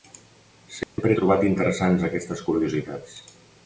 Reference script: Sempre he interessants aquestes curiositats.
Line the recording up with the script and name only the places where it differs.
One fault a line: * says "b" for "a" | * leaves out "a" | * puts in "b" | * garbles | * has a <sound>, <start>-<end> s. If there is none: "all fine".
* has a dropout, 0.8-1.0 s
* puts in "trobat"